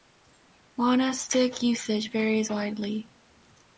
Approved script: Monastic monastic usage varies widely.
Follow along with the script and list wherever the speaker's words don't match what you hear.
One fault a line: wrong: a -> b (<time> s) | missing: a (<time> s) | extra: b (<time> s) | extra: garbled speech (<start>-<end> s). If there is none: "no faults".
missing: monastic (1.6 s)